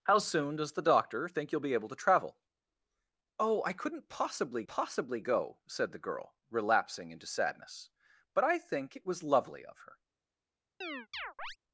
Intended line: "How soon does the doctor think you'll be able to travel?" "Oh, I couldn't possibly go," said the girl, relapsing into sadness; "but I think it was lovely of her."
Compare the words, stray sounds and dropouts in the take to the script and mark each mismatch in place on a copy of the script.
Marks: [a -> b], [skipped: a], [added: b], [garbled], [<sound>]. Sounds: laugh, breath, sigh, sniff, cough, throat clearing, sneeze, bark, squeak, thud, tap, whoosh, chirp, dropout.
"How soon does the doctor think you'll be able to travel?" "Oh, I couldn't possibly [added: possibly] go," said the girl, relapsing into sadness; "but I think it was lovely of her." [chirp]